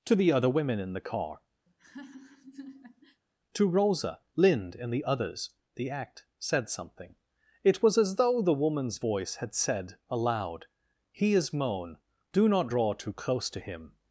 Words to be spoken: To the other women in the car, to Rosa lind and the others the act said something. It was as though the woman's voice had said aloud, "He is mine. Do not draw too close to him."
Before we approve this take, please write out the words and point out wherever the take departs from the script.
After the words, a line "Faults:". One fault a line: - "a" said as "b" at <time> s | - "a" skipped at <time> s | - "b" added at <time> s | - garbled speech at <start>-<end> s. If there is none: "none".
To the other women in the car, to Rosa lind and the others the act said something. It was as though the woman's voice had said aloud, "He is moan. Do not draw too close to him."
Faults:
- "mine" said as "moan" at 11.5 s